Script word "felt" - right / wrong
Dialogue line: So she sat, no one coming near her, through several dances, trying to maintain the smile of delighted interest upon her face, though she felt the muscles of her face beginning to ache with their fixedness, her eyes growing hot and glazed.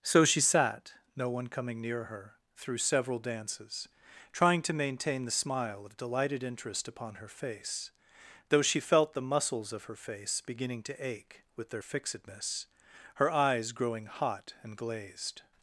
right